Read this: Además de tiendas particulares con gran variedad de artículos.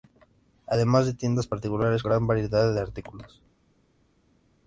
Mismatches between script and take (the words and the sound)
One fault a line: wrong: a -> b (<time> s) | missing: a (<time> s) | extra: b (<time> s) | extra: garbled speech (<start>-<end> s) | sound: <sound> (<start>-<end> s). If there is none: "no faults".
missing: con (2.0 s)